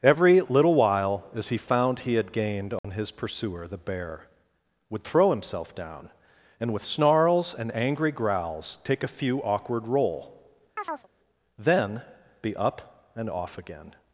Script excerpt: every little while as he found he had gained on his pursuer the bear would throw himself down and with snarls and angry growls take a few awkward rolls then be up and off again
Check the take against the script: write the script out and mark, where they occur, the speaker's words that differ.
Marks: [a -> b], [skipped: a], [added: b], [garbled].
every little while as he found he had gained on his pursuer the bear would throw himself down and with snarls and angry growls take a few awkward [rolls -> roll] then be up and off again